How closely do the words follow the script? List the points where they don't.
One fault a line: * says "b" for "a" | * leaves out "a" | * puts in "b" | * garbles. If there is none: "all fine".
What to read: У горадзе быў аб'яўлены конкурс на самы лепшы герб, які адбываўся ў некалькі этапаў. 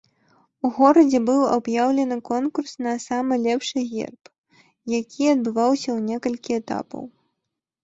all fine